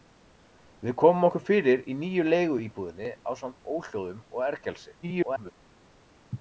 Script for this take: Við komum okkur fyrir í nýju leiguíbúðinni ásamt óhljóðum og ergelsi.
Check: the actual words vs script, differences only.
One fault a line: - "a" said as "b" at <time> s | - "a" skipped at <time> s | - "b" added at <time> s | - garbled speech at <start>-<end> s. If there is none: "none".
- garbled speech at 5.0-5.5 s